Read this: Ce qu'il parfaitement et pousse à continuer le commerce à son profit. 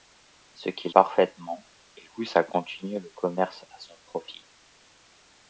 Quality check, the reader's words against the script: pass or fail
pass